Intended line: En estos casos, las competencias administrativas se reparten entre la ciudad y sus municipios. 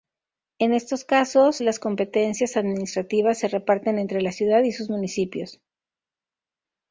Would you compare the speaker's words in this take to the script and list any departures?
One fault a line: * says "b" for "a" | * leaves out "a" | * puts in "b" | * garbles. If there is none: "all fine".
all fine